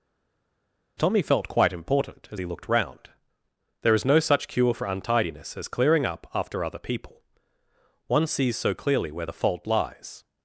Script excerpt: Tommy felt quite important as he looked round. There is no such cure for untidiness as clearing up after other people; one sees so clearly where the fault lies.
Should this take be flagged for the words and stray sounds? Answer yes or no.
no